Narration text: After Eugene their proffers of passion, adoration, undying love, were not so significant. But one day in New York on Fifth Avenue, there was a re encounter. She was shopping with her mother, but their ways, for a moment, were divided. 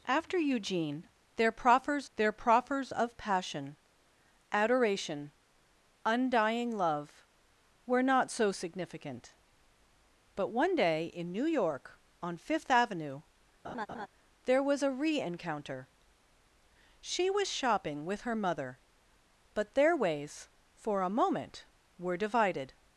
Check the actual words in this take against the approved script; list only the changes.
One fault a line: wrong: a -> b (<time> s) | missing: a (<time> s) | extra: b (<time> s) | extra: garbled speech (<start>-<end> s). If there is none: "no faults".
extra: their proffers (2.1 s)